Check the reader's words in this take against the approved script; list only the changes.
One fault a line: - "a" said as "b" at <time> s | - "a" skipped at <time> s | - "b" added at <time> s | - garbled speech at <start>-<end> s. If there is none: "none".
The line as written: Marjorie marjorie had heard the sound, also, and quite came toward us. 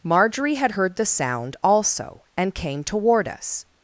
- "marjorie" skipped at 0.6 s
- "quite" skipped at 2.6 s